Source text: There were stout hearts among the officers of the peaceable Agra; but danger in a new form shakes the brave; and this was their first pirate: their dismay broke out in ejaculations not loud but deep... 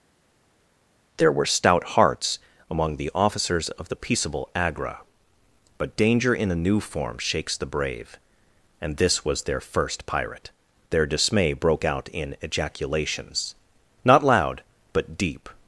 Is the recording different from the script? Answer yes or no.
no